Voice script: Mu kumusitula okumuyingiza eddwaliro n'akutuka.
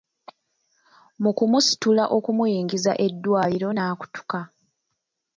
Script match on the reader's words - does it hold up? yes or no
yes